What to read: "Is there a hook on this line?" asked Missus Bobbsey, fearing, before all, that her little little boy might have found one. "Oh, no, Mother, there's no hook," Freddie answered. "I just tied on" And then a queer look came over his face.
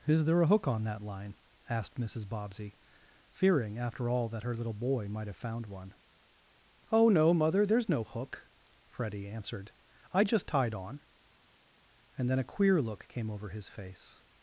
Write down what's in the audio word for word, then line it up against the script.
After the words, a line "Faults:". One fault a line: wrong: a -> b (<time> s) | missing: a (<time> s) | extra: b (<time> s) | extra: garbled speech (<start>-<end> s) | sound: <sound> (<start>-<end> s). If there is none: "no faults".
"Is there a hook on that line?" asked Missus Bobbsey, fearing, after all, that her little boy might have found one. "Oh, no, Mother, there's no hook," Freddie answered. "I just tied on" And then a queer look came over his face.
Faults:
wrong: this -> that (0.8 s)
wrong: before -> after (3.8 s)
missing: little (4.7 s)